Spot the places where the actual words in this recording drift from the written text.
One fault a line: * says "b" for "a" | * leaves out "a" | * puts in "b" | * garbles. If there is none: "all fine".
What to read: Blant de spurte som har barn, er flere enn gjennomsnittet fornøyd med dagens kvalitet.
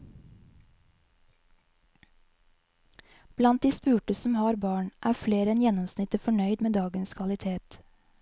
all fine